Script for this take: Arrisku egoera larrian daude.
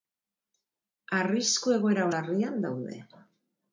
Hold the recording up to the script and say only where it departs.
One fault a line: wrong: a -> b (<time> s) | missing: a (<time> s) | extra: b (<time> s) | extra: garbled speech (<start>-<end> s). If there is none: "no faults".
no faults